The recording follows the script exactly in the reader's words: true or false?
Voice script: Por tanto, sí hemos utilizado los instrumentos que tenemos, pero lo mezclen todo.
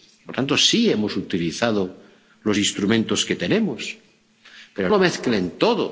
true